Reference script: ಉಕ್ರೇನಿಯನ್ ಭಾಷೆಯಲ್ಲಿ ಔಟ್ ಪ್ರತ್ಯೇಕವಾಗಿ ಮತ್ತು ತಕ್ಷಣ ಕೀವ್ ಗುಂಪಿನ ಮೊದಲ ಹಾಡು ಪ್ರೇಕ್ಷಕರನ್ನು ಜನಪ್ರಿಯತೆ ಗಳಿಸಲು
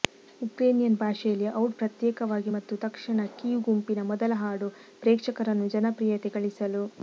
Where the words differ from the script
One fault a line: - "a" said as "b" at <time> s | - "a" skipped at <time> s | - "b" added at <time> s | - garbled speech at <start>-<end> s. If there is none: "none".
none